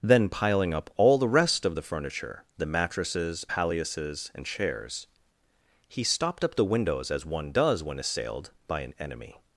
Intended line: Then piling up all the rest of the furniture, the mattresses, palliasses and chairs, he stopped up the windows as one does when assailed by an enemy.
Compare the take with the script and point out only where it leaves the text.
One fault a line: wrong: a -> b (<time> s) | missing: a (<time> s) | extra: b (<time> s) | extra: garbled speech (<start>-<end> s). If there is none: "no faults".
no faults